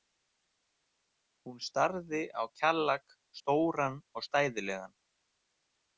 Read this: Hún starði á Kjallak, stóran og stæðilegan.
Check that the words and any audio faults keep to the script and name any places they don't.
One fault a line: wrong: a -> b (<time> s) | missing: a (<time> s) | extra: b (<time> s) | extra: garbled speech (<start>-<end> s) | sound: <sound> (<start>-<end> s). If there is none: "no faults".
no faults